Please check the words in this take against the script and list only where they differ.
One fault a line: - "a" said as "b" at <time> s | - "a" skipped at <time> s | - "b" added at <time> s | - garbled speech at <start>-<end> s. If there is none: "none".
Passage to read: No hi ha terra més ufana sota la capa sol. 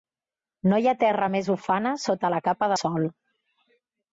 none